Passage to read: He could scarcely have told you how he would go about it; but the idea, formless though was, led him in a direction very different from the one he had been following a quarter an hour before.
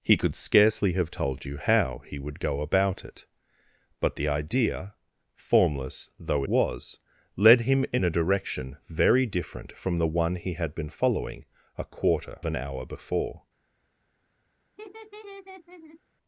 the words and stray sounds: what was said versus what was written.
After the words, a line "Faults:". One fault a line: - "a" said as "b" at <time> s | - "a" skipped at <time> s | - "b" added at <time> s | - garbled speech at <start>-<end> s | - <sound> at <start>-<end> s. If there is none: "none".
He could scarcely have told you how he would go about it; but the idea, formless though was, led him in a direction very different from the one he had been following a quarter an hour before.
Faults:
- laugh at 14.8-16.0 s